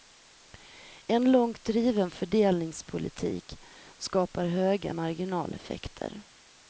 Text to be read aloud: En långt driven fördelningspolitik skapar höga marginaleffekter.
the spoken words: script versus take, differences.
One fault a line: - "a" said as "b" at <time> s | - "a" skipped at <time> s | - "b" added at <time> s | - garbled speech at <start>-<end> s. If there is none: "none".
none